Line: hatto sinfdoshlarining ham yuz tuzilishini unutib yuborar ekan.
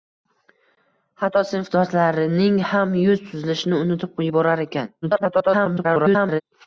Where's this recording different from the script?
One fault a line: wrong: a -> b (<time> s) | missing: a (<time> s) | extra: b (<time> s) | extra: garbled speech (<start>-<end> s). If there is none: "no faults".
extra: garbled speech (5.0-6.4 s)